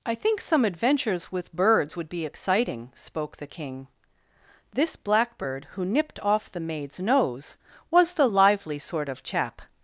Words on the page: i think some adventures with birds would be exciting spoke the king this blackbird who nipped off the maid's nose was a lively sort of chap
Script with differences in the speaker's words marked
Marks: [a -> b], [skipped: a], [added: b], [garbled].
i think some adventures with birds would be exciting spoke the king this blackbird who nipped off the maid's nose was [a -> the] lively sort of chap